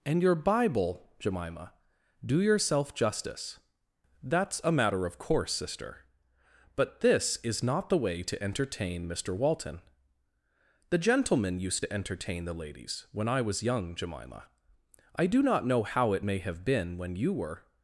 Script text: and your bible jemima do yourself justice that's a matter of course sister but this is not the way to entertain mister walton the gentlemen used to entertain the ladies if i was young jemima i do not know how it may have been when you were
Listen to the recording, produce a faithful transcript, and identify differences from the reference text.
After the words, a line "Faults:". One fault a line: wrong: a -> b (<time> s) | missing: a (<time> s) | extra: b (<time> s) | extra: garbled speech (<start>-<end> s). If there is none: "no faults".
and your bible jemima do yourself justice that's a matter of course sister but this is not the way to entertain mister walton the gentlemen used to entertain the ladies when i was young jemima i do not know how it may have been when you were
Faults:
wrong: if -> when (13.1 s)